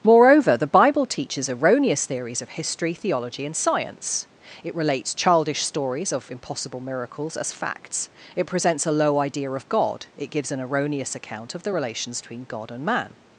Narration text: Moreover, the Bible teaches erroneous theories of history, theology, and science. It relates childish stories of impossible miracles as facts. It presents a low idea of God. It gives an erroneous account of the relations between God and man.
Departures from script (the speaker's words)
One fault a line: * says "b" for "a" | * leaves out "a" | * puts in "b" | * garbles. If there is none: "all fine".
all fine